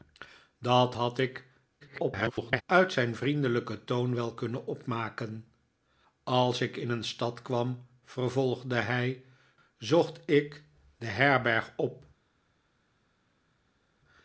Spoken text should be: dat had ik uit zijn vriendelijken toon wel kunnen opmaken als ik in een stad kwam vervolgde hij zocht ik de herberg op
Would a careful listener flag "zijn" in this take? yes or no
no